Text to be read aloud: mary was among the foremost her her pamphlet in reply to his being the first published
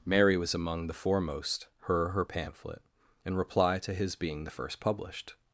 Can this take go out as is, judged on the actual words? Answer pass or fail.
pass